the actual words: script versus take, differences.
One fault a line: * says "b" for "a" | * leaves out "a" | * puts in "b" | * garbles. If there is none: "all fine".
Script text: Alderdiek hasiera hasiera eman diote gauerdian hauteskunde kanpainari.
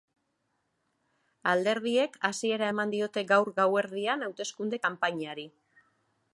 * leaves out "hasiera"
* puts in "gaur"